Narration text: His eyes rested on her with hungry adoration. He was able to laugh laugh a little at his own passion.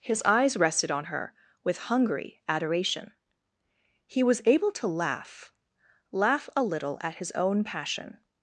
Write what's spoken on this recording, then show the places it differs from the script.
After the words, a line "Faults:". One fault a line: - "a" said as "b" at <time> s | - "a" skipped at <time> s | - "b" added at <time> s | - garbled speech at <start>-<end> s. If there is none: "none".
His eyes rested on her with hungry adoration. He was able to laugh laugh a little at his own passion.
Faults:
none